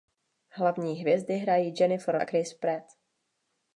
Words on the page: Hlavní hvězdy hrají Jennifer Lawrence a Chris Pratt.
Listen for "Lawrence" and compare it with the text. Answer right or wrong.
wrong